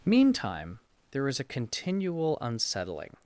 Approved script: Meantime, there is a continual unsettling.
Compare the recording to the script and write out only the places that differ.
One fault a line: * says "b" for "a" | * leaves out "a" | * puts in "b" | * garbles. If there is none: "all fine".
all fine